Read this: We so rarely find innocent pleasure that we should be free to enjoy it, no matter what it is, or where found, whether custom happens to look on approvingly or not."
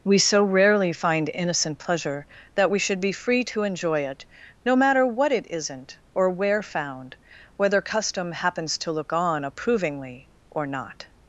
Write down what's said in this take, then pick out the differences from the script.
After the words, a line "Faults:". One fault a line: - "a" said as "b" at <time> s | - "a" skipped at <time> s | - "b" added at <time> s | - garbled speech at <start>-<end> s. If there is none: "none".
We so rarely find innocent pleasure that we should be free to enjoy it, no matter what it isn't, or where found, whether custom happens to look on approvingly or not."
Faults:
- "is" said as "isn't" at 5.5 s